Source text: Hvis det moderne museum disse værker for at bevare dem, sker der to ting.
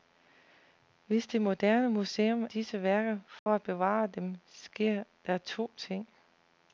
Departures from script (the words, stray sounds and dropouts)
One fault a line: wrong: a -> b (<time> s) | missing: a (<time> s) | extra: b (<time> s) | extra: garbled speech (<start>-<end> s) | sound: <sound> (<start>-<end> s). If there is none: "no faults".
sound: dropout (3.4-3.5 s)